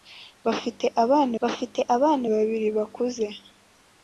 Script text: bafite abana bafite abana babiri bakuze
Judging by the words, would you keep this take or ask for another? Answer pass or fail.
pass